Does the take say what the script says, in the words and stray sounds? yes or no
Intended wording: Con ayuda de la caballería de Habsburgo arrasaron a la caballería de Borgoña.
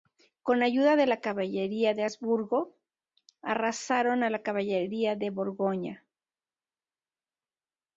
yes